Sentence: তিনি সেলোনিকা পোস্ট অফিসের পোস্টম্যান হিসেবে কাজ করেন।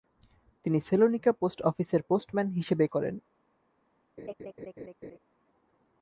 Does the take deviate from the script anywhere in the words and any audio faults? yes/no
yes